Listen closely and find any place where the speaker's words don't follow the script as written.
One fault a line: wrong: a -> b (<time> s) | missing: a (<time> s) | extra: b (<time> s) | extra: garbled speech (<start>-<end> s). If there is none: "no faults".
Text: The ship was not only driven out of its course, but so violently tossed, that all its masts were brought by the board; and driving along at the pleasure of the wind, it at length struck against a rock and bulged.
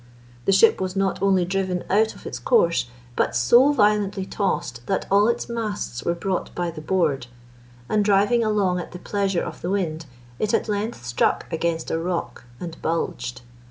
no faults